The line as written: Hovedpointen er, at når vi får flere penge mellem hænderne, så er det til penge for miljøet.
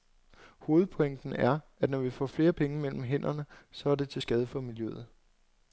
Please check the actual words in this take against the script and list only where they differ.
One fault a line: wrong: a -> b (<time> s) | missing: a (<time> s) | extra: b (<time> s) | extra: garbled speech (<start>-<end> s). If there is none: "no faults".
wrong: penge -> skade (4.2 s)